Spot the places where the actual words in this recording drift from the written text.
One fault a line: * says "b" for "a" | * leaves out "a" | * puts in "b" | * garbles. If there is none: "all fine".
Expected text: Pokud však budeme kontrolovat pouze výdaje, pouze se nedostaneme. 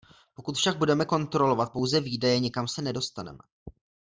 * says "nikam" for "pouze"